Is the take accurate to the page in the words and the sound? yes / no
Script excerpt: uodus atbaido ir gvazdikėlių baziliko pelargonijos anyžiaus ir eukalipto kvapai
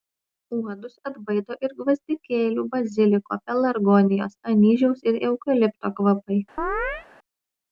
no